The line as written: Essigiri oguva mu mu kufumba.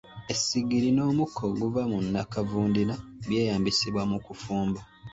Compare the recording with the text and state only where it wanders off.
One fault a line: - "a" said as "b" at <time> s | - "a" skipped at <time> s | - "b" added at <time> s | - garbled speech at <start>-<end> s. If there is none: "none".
- "n'omukka" added at 0.9 s
- "nnakavundira by'eyambisibwa" added at 2.0 s